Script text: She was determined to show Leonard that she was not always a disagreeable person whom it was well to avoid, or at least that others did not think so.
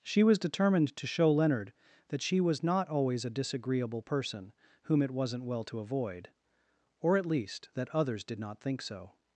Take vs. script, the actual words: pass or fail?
fail